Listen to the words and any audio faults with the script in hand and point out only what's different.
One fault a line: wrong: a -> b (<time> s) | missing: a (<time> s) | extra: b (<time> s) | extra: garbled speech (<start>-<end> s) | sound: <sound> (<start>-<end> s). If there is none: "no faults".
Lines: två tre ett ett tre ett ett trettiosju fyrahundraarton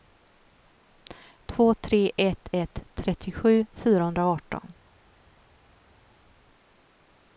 missing: tre ett ett (2.8 s)